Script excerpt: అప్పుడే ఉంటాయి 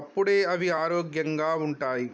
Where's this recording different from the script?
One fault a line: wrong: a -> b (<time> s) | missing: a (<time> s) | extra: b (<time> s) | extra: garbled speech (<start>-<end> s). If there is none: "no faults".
extra: అవి ఆరోగ్యంగా (0.5 s)